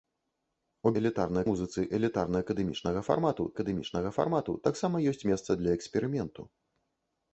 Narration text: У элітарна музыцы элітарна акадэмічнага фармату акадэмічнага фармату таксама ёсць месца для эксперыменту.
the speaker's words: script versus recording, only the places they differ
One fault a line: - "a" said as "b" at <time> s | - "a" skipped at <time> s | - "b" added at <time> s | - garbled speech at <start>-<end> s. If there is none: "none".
none